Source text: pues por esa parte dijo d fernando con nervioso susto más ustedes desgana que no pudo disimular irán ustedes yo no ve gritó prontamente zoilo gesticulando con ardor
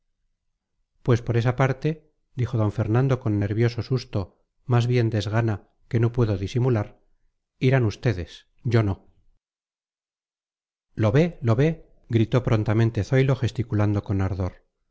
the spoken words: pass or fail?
fail